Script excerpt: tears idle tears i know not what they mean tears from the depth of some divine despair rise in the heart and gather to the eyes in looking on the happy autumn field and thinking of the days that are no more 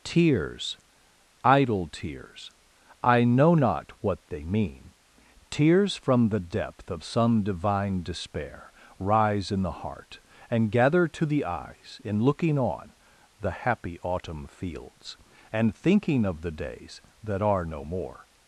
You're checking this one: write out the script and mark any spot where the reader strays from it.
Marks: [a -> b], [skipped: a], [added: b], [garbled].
tears idle tears i know not what they mean tears from the depth of some divine despair rise in the heart and gather to the eyes in looking on the happy autumn [field -> fields] and thinking of the days that are no more